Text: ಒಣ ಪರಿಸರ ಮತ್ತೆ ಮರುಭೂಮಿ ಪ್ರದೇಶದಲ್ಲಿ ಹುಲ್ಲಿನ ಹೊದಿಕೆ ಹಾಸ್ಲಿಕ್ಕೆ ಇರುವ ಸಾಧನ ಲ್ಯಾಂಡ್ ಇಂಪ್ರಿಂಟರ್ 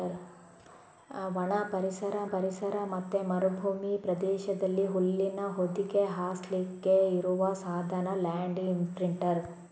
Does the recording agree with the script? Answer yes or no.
no